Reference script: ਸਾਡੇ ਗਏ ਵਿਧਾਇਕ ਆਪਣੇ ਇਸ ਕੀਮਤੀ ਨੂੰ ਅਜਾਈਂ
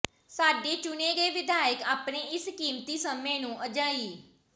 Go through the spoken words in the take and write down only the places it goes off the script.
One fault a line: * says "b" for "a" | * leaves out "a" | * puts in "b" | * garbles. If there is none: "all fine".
* puts in "ਚੁਣੇ"
* puts in "ਸਮੇਂ"